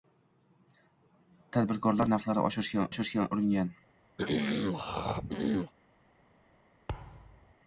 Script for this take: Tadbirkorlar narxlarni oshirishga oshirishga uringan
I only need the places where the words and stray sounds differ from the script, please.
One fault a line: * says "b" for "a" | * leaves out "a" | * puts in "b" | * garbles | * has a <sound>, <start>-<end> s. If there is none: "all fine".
* has a throat clearing, 4.2-5.7 s
* has a thud, 6.9-7.5 s